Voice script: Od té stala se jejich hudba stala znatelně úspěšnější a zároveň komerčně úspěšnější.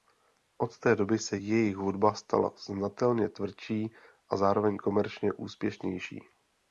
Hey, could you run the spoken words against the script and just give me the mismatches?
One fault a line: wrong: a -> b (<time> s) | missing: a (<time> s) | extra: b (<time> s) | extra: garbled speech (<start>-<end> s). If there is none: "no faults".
wrong: stala -> doby (0.9 s)
wrong: úspěšnější -> tvrdší (3.3 s)